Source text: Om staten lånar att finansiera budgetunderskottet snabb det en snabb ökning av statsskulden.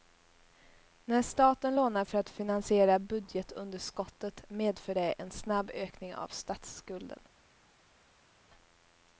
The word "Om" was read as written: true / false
false